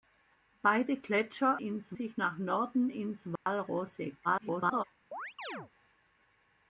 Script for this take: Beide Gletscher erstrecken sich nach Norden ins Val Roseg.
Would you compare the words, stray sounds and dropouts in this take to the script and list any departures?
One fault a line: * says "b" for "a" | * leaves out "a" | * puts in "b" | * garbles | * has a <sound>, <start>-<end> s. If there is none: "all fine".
* says "ins" for "erstrecken"
* has a dropout, 3.4-3.5 s
* garbles
* has a chirp, 5.1-5.7 s